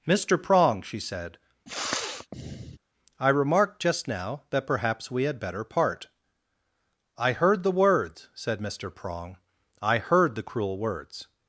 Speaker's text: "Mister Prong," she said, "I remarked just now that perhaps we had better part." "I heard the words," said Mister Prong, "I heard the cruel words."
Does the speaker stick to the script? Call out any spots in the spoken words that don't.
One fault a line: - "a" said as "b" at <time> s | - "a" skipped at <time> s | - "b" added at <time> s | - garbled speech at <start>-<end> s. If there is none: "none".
none